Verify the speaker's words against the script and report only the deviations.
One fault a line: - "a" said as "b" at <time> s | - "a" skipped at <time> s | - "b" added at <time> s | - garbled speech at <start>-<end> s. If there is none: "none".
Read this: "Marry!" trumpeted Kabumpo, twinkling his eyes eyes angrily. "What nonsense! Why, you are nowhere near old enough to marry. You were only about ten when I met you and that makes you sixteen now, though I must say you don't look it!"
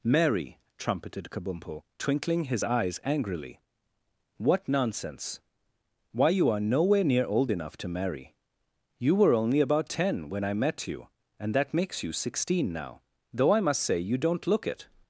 - "eyes" skipped at 3.0 s